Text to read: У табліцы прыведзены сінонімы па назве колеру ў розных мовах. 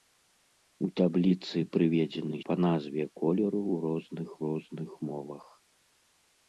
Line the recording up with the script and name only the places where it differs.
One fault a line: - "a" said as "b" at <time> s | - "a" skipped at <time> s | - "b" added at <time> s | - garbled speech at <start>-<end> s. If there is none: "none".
- "сінонімы" skipped at 2.4 s
- "розных" added at 4.4 s